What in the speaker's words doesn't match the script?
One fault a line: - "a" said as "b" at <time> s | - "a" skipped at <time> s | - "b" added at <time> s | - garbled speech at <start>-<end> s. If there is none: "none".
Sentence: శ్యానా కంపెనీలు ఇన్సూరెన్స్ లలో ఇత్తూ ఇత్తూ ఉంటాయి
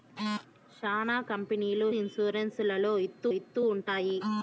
none